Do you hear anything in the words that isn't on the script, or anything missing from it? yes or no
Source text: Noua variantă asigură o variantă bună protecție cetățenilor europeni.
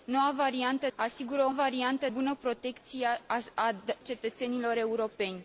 no